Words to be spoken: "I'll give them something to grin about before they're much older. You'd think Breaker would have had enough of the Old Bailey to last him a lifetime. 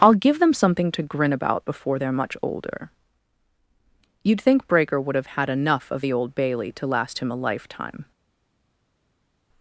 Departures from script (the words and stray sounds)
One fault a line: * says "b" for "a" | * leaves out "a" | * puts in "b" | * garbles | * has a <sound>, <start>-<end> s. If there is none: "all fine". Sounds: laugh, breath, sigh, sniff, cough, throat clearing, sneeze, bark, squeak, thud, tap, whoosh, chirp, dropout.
all fine